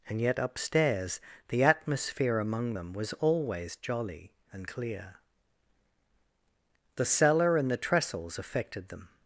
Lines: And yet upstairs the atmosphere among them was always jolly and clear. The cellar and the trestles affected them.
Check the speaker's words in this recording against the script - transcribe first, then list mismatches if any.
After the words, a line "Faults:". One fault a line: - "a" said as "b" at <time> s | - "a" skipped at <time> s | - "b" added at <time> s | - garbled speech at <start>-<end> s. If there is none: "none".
And yet upstairs the atmosphere among them was always jolly and clear. The cellar and the trestles affected them.
Faults:
none